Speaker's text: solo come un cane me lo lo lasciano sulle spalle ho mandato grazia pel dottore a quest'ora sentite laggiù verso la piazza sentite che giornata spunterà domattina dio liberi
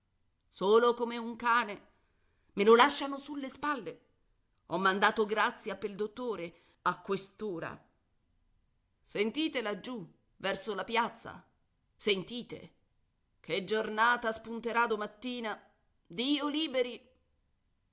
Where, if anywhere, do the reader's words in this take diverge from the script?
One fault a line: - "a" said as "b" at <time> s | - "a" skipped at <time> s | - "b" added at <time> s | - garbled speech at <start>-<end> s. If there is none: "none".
- "lo" skipped at 2.8 s